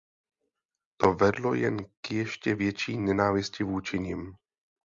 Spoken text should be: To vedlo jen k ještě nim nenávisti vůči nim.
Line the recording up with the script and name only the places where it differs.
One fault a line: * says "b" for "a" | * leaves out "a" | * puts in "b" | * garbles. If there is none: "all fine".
* says "větší" for "nim"